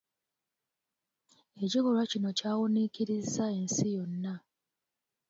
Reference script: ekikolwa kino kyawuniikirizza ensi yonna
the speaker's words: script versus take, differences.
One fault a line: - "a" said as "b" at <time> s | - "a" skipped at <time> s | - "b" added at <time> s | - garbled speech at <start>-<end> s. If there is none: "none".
none